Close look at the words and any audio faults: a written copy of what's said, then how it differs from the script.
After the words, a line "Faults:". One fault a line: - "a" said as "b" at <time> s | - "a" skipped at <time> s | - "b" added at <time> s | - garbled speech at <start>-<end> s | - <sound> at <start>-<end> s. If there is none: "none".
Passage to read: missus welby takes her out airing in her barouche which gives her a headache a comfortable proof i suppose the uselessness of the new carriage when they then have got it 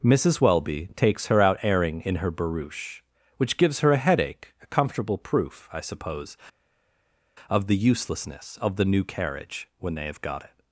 missus welby takes her out airing in her barouche which gives her a headache a comfortable proof i suppose of the uselessness of the new carriage when they have got it
Faults:
- "of" added at 7.5 s
- "then" skipped at 10.1 s